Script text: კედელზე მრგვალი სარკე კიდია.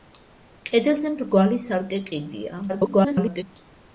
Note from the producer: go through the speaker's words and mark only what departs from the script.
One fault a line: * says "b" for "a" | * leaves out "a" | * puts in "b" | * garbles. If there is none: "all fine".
* garbles